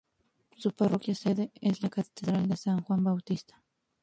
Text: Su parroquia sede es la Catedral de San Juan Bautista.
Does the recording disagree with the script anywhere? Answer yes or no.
no